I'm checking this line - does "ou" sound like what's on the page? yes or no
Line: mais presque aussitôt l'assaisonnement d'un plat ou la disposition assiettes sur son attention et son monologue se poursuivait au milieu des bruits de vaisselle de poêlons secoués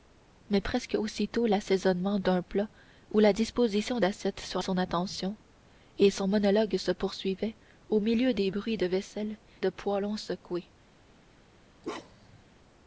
yes